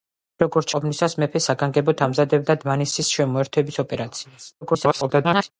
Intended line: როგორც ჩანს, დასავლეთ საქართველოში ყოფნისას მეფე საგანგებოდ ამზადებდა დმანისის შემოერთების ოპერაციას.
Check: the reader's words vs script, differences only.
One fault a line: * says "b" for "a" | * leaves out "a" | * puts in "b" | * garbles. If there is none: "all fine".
* leaves out "ჩანს დასავლეთ საქართველოში"
* garbles